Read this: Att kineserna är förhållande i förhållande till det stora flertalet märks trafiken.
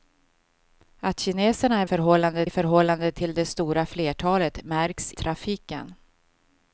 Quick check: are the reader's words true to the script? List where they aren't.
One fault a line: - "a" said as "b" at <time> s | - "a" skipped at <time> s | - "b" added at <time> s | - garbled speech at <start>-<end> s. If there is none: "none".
none